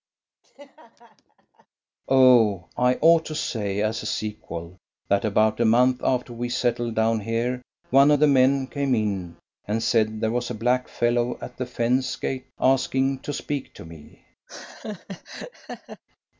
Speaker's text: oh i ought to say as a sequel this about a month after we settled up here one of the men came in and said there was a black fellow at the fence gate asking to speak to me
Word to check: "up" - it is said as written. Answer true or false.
false